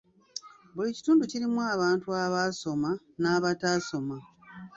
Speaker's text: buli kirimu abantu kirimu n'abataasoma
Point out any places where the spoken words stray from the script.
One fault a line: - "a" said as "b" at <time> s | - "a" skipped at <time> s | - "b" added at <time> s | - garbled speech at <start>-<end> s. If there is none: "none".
- "kitundu" added at 1.0 s
- "kirimu" said as "abaasoma" at 2.2 s